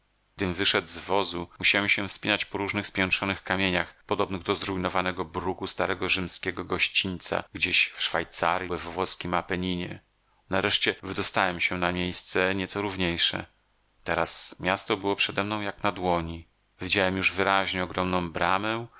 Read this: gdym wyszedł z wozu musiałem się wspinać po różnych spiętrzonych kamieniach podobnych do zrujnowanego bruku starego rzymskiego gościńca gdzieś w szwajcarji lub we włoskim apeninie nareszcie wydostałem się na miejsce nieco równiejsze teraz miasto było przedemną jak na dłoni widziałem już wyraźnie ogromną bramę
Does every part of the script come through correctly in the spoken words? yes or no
no